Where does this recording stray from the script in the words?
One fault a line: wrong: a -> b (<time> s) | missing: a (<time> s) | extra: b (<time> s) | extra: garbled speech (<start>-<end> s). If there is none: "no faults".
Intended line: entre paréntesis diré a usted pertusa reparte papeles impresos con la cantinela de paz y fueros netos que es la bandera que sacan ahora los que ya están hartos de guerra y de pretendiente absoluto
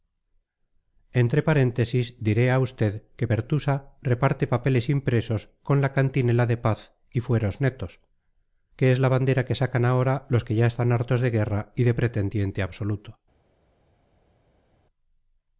extra: que (3.2 s)